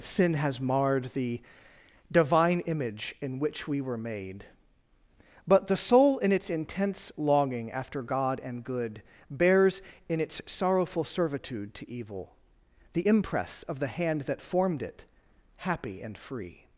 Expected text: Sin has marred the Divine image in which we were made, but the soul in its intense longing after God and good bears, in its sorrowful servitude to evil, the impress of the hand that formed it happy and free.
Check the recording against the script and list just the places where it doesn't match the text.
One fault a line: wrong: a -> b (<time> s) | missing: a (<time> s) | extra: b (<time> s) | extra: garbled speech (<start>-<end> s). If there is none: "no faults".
no faults